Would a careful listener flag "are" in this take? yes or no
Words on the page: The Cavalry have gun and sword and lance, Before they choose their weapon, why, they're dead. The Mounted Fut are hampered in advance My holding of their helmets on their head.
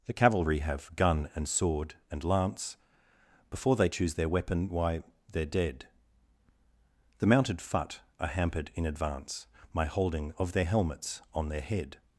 no